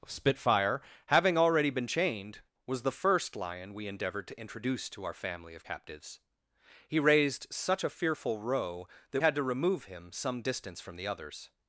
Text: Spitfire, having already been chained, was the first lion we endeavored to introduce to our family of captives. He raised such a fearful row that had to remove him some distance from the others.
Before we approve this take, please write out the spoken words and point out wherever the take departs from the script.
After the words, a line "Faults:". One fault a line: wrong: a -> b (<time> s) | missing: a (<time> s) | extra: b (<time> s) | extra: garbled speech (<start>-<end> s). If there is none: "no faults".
Spitfire, having already been chained, was the first lion we endeavored to introduce to our family of captives. He raised such a fearful row that had to remove him some distance from the others.
Faults:
no faults